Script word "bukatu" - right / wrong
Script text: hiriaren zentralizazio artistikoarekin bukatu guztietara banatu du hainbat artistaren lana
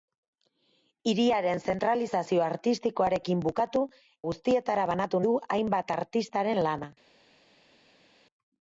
right